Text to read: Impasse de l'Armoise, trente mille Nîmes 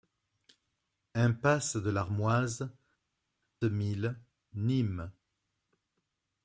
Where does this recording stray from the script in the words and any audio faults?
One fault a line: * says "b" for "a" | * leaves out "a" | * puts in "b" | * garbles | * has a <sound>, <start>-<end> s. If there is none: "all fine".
* leaves out "trente"